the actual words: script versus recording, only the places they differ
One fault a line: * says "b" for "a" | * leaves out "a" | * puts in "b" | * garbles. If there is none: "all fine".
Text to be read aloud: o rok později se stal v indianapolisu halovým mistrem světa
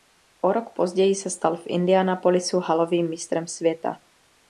all fine